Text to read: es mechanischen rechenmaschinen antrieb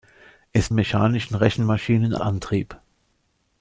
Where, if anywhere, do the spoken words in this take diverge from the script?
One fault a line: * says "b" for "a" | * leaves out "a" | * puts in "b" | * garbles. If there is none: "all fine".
all fine